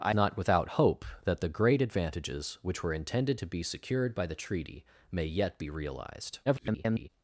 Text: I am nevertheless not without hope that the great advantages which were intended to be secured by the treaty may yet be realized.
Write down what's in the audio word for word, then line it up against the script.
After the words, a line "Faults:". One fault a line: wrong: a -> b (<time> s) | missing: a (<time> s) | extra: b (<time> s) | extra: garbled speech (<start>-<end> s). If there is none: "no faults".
I not without hope that the great advantages which were intended to be secured by the treaty may yet be realized. [garbled]
Faults:
missing: am nevertheless (0.1 s)
extra: garbled speech (6.5-7.1 s)